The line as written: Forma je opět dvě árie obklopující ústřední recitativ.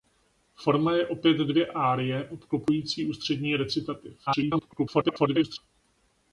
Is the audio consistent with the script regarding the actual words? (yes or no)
no